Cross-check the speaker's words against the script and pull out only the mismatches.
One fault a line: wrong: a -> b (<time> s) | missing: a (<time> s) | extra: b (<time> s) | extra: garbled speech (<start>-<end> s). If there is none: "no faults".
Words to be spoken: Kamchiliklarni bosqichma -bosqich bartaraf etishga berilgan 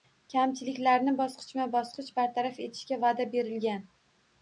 extra: va'da (3.1 s)